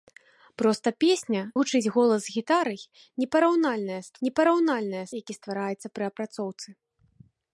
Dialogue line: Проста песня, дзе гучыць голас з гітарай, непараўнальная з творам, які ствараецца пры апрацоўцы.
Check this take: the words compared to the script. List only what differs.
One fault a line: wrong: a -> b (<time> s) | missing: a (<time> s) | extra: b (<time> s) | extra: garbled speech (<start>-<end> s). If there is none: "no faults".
missing: дзе (1.4 s)
wrong: творам -> непараўнальная (4.3 s)